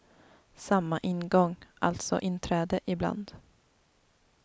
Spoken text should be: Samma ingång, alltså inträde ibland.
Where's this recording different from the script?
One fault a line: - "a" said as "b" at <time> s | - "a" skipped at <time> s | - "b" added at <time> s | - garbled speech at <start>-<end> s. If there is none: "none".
none